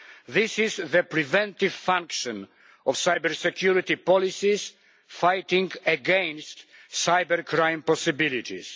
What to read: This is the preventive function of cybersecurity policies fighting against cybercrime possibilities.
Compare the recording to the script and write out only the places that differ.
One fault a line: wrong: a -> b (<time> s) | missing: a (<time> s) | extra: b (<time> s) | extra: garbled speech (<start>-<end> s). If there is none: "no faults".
no faults